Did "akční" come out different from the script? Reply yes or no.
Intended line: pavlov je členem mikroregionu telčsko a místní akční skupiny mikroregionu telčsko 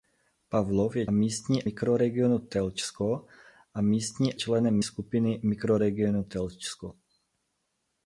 yes